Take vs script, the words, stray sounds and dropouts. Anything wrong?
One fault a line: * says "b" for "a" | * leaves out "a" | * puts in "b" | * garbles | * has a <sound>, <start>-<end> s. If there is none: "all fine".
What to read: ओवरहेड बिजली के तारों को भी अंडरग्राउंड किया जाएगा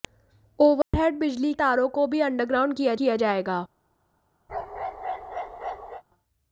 * has a dropout, 0.8-0.9 s
* leaves out "के"
* puts in "किया"
* has a bark, 4.5-6.0 s